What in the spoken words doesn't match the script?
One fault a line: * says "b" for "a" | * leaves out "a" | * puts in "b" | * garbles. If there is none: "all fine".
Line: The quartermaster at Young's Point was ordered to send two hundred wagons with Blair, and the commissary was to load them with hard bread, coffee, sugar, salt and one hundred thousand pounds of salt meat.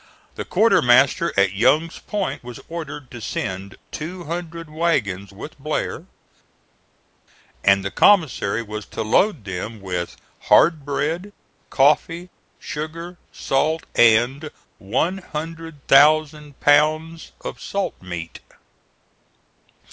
all fine